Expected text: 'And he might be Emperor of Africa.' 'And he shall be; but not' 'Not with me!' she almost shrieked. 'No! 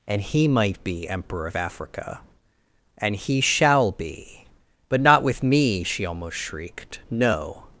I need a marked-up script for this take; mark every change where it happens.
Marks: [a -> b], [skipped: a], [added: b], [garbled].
'And he might be Emperor of Africa.' 'And he shall be; but not' [skipped: 'Not] with me!' she almost shrieked. 'No!